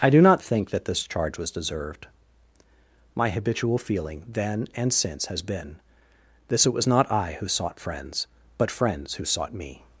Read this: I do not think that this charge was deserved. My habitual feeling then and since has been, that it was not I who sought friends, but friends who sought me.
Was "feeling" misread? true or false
false